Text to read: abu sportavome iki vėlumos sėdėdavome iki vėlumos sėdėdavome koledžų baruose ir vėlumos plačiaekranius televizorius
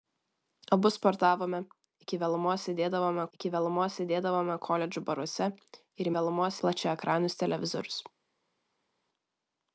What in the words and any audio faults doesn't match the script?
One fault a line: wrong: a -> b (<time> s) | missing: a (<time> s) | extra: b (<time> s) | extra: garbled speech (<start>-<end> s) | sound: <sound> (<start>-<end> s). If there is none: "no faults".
no faults